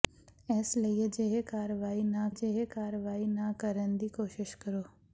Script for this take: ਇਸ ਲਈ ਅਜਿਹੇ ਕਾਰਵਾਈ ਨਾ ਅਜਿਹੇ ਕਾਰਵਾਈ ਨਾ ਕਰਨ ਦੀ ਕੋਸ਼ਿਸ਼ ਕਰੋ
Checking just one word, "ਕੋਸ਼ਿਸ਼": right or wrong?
right